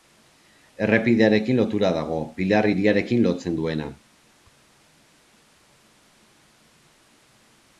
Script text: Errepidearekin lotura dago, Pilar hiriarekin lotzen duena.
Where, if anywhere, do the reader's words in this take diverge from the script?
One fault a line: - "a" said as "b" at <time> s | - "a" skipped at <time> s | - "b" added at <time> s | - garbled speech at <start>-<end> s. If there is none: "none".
none